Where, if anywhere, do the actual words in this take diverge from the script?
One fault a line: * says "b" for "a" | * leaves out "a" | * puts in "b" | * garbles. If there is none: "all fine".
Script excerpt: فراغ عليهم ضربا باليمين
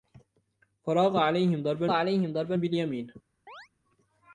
* puts in "عليهم ضربا"